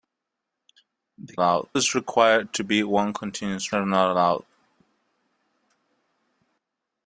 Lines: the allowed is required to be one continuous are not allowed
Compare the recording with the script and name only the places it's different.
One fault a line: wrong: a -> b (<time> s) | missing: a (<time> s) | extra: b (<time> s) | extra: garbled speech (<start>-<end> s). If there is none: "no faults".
no faults